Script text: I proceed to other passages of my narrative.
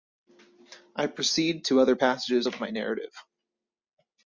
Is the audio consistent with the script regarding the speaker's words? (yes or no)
yes